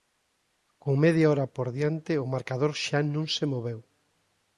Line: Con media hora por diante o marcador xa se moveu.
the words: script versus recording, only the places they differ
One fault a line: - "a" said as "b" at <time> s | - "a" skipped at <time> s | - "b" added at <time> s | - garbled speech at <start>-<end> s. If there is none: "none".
- "non" added at 3.1 s